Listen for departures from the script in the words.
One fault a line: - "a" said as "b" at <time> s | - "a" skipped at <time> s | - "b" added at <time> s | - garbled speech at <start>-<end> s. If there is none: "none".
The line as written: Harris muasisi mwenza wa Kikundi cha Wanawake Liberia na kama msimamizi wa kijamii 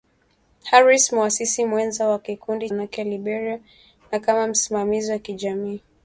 - "cha" skipped at 2.7 s